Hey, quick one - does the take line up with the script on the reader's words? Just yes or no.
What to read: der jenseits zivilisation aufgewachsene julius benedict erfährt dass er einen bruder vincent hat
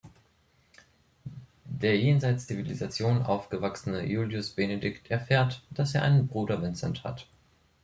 yes